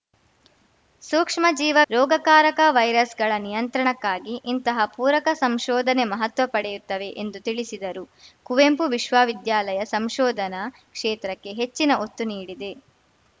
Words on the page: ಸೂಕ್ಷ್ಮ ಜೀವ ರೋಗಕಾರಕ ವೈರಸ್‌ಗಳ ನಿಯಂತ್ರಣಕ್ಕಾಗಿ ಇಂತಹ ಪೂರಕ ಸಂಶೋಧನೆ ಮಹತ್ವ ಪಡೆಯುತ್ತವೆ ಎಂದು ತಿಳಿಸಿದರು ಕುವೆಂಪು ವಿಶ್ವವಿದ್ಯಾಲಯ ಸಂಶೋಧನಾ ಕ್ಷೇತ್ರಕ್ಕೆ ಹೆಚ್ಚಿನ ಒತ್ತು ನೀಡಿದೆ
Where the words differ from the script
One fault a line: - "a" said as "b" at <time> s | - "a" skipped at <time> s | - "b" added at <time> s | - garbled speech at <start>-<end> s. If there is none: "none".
none